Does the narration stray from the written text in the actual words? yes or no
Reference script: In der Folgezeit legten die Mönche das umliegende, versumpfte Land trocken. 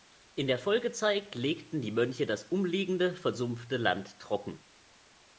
no